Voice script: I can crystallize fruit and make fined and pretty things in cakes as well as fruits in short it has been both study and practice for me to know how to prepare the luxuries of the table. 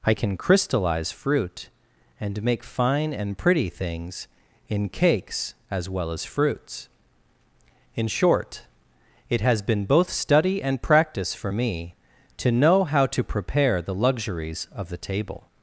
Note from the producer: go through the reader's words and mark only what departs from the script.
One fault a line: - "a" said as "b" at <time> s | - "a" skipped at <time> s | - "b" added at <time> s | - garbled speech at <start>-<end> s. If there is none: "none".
- "fined" said as "fine" at 2.6 s